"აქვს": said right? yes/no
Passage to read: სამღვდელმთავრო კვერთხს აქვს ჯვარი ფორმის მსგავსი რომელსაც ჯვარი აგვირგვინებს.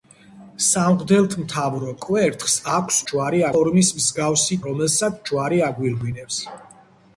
yes